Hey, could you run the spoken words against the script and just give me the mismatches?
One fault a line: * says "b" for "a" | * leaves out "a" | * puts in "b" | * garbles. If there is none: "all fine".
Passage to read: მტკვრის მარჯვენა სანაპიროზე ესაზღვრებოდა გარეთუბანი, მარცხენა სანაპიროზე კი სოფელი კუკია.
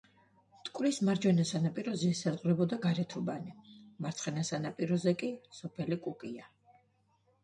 all fine